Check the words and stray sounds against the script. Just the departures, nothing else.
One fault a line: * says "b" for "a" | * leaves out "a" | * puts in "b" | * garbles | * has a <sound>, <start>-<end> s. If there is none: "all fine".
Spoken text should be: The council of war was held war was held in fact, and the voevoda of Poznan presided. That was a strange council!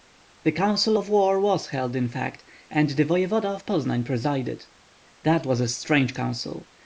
* leaves out "war was held"